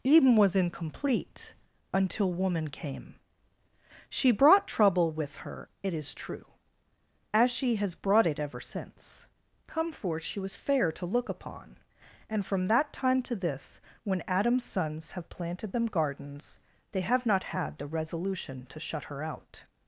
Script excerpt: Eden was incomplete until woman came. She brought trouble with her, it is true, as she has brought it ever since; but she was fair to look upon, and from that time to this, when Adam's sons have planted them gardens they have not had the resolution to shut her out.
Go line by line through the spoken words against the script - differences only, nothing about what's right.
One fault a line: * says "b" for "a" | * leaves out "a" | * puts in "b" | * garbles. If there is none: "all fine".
* says "come forth" for "but"